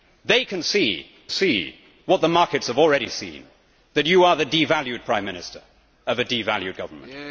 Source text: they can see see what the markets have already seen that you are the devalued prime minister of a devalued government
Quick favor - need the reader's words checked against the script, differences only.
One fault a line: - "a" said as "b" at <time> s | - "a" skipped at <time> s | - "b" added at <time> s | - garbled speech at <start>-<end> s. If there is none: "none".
none